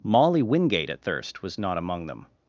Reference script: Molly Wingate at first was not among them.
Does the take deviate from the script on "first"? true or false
true